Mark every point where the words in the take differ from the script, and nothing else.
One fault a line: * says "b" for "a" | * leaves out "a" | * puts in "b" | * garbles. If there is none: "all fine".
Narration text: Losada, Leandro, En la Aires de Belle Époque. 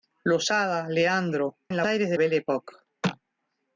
all fine